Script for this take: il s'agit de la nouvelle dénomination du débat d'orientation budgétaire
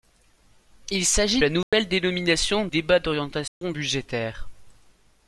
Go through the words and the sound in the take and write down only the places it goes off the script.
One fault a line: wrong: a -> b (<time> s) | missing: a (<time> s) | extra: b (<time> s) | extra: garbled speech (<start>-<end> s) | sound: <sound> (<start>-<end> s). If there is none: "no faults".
missing: de (1.4 s)
sound: dropout (1.6-1.7 s)
missing: du (2.7 s)
sound: dropout (3.5-3.6 s)